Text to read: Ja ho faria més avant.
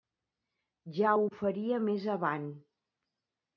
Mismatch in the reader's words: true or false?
false